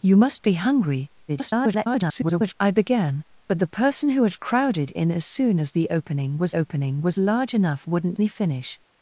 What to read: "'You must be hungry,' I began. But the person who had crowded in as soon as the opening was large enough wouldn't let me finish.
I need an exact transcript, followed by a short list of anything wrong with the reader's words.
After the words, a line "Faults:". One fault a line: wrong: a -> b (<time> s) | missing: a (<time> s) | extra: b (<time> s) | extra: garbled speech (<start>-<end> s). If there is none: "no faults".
"'You must be hungry,' [garbled] I began. But the person who had crowded in as soon as the opening was opening was large enough wouldn't me finish.
Faults:
extra: garbled speech (1.3-2.5 s)
extra: opening was (6.5 s)
missing: let (8.2 s)